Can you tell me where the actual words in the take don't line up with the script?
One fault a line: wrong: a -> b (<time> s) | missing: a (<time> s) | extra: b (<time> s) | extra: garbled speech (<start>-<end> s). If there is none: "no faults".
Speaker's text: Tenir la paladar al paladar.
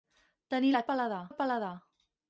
no faults